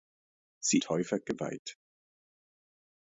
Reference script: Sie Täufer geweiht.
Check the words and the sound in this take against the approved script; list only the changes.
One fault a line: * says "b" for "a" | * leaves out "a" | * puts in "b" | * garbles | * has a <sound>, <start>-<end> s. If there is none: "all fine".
all fine